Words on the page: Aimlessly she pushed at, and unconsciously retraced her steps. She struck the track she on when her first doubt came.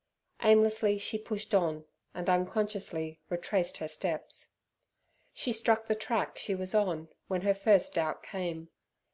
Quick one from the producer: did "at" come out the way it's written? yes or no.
no